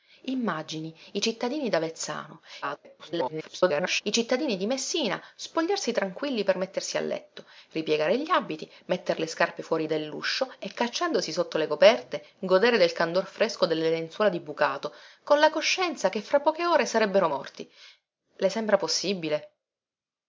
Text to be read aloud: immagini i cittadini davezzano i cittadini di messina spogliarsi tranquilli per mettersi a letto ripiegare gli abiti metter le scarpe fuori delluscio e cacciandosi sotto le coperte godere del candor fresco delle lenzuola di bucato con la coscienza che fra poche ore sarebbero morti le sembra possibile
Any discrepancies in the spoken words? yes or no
yes